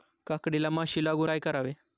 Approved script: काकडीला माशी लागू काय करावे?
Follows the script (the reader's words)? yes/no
yes